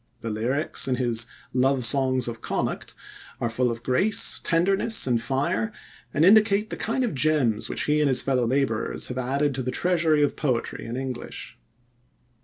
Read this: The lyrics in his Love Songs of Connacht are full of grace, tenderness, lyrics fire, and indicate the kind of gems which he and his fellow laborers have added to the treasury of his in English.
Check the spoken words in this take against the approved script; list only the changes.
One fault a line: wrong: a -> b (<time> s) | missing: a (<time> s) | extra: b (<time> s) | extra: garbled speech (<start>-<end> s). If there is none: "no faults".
wrong: lyrics -> and (5.0 s)
wrong: his -> poetry (10.4 s)